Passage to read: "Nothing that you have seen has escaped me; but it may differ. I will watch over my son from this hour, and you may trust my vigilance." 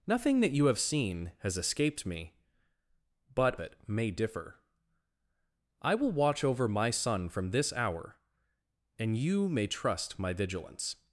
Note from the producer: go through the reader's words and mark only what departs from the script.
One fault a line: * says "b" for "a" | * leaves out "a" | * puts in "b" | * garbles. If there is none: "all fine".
all fine